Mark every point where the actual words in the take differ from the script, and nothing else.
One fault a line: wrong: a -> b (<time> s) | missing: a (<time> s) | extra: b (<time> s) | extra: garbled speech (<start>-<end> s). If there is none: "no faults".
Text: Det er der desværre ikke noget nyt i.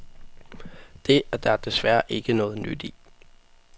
no faults